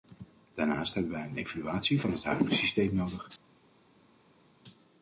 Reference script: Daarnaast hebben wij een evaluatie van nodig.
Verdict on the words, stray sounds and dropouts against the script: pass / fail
fail